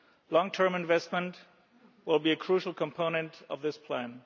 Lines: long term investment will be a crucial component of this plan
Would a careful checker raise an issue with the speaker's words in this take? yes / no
no